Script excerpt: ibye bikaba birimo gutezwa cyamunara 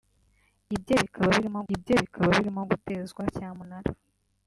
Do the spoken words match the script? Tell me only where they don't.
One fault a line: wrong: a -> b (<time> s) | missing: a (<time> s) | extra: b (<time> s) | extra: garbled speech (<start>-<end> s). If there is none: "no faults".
extra: ibye bikaba birimo (1.7 s)